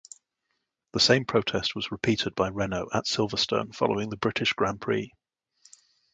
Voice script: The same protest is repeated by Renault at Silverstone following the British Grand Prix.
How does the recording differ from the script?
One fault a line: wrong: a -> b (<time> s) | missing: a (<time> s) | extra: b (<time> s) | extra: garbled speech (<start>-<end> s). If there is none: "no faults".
wrong: is -> was (1.8 s)